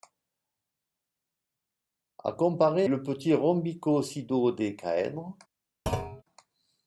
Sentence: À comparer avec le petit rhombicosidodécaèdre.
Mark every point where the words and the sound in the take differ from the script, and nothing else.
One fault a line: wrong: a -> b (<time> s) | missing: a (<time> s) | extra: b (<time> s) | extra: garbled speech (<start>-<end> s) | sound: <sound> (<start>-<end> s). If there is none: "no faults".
missing: avec (2.9 s)
sound: thud (5.9-6.2 s)